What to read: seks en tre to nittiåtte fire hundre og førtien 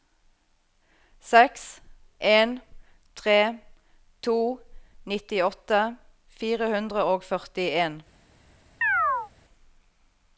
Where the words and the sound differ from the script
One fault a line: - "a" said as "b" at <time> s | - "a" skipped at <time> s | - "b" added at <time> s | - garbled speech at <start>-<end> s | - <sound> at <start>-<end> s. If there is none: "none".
- chirp at 8.8-9.3 s